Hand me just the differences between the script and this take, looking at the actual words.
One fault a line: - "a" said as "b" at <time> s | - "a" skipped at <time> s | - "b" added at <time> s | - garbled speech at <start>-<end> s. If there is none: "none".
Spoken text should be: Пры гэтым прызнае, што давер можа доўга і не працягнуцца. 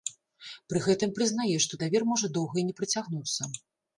none